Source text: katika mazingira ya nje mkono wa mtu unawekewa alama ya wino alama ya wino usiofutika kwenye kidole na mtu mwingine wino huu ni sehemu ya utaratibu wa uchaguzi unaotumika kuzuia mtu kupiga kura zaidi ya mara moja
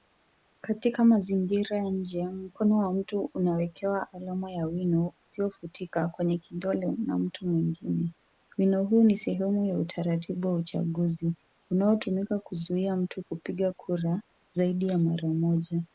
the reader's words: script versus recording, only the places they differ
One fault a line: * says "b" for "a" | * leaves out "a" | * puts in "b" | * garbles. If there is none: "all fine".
* leaves out "alama ya wino"